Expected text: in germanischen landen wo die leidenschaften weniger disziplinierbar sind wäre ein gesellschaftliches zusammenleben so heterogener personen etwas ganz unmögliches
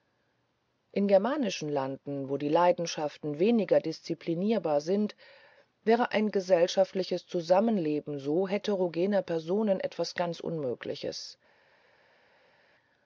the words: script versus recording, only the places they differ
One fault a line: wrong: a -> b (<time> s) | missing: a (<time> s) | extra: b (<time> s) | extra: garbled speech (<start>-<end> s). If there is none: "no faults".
no faults